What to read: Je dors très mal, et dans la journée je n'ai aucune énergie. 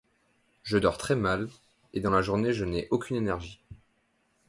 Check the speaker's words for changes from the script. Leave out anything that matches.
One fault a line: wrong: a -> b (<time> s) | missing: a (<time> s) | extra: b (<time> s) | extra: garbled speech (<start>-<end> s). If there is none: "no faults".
no faults